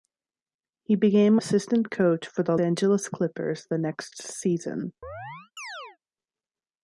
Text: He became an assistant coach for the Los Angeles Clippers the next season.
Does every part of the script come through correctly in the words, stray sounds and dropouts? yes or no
no